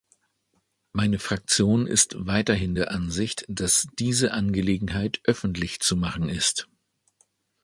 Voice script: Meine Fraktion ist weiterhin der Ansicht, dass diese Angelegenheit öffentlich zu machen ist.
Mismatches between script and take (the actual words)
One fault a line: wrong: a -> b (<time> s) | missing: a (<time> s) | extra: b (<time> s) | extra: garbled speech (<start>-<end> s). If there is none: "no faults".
no faults